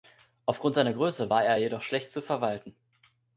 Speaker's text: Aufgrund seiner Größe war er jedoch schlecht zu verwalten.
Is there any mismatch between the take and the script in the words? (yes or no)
no